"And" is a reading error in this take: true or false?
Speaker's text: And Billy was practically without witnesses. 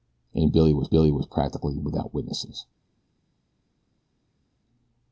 false